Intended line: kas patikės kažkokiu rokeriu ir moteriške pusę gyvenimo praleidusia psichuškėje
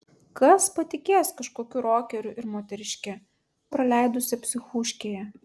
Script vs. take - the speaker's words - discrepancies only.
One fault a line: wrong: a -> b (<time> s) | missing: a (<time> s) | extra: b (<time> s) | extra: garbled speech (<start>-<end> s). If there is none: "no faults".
missing: pusę gyvenimo (3.1 s)